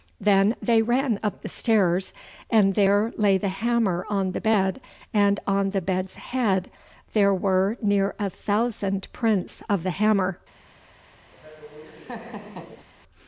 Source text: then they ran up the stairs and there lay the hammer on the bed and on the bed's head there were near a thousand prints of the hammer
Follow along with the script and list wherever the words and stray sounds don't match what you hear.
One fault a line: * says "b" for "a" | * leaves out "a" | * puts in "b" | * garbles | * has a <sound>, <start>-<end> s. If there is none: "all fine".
* has a laugh, 11.3-12.9 s